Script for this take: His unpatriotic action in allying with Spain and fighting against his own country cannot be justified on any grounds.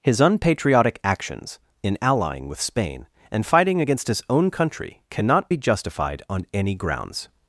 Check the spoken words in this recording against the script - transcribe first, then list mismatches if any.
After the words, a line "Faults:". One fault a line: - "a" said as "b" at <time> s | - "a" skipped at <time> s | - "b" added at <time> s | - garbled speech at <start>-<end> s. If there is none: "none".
His unpatriotic actions in allying with Spain and fighting against his own country cannot be justified on any grounds.
Faults:
- "action" said as "actions" at 1.0 s